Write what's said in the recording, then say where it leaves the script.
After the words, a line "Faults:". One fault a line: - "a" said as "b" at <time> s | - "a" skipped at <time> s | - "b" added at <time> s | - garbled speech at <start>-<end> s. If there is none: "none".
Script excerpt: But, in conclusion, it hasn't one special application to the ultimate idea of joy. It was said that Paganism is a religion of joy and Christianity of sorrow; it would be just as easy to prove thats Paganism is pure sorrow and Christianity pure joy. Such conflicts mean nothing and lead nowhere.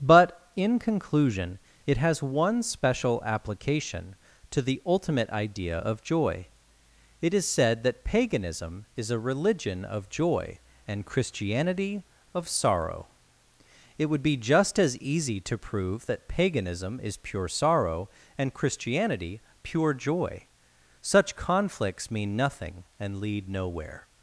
But, in conclusion, it has one special application to the ultimate idea of joy. It is said that Paganism is a religion of joy and Christianity of sorrow; it would be just as easy to prove that Paganism is pure sorrow and Christianity pure joy. Such conflicts mean nothing and lead nowhere.
Faults:
- "hasn't" said as "has" at 2.0 s
- "was" said as "is" at 7.3 s
- "thats" said as "that" at 16.1 s